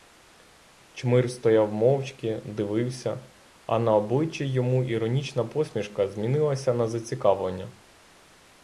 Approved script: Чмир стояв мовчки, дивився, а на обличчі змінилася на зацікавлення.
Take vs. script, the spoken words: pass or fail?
fail